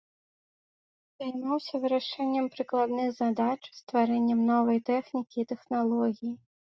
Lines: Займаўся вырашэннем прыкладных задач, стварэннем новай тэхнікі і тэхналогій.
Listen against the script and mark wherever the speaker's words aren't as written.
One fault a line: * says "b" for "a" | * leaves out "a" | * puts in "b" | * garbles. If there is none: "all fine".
all fine